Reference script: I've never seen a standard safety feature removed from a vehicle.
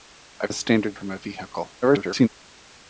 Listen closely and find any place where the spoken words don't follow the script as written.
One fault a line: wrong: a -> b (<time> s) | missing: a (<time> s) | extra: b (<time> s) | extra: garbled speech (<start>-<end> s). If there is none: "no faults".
missing: never seen (0.5 s)
missing: safety feature removed (1.0 s)
extra: garbled speech (1.8-2.3 s)